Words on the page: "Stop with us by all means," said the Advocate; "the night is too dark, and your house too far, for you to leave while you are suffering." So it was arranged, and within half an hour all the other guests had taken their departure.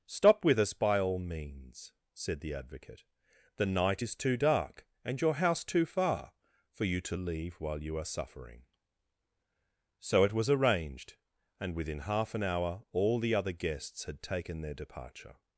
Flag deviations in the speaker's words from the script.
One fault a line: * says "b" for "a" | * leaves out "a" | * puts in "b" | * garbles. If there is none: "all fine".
all fine